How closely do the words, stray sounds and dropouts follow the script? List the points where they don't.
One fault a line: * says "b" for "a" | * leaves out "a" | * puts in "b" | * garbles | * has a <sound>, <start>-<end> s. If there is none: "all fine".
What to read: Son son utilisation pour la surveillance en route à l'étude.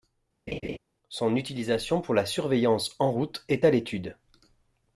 * has a laugh, 0.5-0.8 s
* leaves out "son"
* puts in "est"